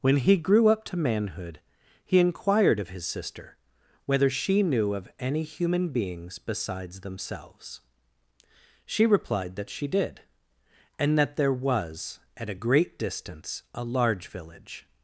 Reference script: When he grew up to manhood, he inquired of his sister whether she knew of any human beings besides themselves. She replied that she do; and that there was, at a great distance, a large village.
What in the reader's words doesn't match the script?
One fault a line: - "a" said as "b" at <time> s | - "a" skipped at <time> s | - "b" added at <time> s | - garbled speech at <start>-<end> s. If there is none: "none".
- "do" said as "did" at 9.9 s